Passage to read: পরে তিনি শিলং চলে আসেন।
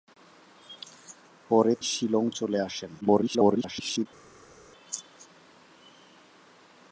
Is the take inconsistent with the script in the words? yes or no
yes